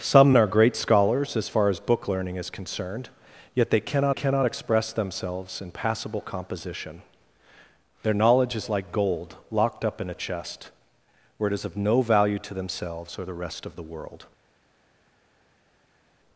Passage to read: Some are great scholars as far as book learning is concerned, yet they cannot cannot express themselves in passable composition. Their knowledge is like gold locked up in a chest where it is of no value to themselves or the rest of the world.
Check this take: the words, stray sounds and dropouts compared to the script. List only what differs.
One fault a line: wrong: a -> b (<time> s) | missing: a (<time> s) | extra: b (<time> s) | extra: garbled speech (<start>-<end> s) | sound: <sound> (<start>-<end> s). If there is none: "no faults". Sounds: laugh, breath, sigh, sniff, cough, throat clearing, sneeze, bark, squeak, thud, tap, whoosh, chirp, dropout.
no faults